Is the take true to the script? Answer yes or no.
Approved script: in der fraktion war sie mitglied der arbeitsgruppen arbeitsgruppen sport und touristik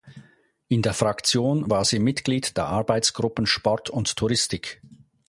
no